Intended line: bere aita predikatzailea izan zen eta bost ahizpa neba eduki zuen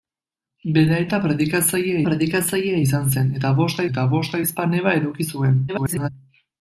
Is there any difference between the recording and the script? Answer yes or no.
yes